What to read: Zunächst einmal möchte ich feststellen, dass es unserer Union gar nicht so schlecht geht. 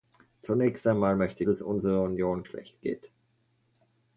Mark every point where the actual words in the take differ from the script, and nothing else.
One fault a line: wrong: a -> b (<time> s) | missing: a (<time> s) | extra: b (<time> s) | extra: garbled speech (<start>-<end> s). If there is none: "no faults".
missing: ich feststellen dass (1.4 s)
missing: gar nicht so (2.4 s)